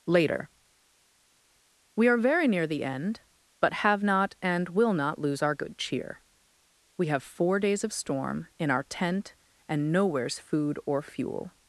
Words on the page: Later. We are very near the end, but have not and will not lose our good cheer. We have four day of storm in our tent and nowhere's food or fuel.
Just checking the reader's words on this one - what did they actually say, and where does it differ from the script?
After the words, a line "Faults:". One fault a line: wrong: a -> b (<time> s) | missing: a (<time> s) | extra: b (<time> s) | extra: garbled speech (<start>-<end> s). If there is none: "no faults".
Later. We are very near the end, but have not and will not lose our good cheer. We have four days of storm in our tent and nowhere's food or fuel.
Faults:
wrong: day -> days (7.6 s)